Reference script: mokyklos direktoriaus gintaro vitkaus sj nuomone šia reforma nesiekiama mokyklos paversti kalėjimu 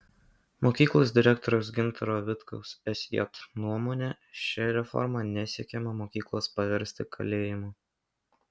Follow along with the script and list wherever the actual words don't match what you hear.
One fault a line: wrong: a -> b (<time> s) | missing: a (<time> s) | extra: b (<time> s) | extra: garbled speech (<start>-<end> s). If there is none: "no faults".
no faults